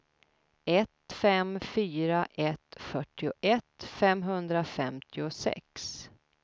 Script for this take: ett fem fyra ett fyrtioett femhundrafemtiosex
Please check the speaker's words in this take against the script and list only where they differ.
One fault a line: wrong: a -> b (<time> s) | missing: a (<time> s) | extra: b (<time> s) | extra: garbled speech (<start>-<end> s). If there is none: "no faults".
no faults